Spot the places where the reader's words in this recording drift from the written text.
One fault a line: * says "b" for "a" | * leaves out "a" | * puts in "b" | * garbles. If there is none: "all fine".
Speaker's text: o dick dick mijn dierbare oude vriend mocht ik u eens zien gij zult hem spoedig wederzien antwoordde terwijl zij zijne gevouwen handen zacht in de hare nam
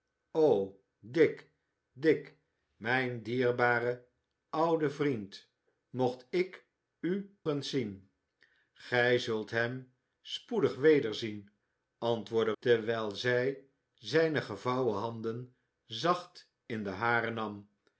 all fine